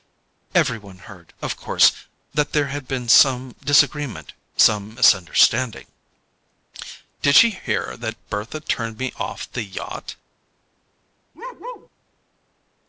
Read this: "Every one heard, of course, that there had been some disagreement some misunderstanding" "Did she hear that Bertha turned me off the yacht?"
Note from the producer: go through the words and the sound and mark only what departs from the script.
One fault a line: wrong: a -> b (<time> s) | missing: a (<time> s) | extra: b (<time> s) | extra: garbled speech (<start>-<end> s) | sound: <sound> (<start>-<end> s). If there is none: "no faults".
sound: bark (11.3-11.9 s)